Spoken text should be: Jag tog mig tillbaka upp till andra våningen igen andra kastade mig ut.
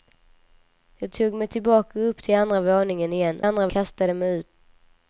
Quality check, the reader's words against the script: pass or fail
pass